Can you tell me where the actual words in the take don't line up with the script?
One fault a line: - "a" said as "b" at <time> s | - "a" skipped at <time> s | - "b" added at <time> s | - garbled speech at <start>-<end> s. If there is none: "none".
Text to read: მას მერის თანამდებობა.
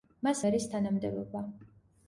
none